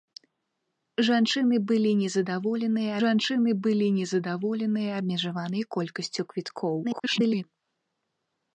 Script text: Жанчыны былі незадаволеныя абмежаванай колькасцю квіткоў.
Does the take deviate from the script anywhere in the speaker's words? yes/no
yes